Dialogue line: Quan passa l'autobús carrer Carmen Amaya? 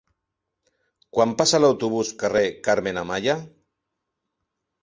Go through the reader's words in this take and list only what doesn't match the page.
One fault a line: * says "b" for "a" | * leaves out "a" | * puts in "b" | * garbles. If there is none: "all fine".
all fine